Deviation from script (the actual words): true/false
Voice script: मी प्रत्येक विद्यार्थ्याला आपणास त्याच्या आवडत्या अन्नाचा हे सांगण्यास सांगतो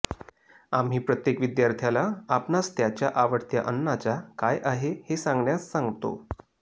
true